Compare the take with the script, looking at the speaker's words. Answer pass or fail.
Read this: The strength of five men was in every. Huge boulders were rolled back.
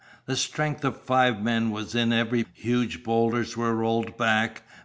pass